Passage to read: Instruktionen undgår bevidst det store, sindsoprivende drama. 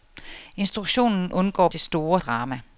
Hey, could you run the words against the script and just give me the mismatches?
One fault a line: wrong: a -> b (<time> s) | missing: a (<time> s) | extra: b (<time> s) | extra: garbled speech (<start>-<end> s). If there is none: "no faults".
missing: bevidst (1.7 s)
missing: sindsoprivende (2.2 s)